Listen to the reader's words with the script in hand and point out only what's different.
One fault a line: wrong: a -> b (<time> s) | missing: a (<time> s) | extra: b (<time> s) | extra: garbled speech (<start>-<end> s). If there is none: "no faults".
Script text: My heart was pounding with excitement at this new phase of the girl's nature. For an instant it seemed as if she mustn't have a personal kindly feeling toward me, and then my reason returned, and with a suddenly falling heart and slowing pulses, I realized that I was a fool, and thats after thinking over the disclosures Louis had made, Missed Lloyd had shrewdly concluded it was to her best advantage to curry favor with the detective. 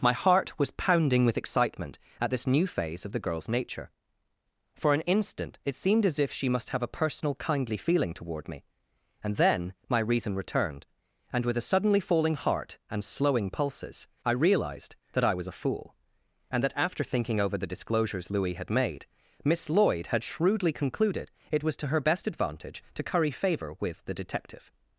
wrong: mustn't -> must (6.5 s)
wrong: thats -> that (16.6 s)
wrong: Missed -> Miss (19.4 s)